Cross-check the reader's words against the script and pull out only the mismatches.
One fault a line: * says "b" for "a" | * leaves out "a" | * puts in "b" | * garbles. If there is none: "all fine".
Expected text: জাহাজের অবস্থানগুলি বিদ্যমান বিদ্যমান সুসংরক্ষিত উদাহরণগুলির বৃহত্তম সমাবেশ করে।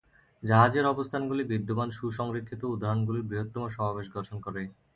* leaves out "বিদ্যমান"
* puts in "গঠন"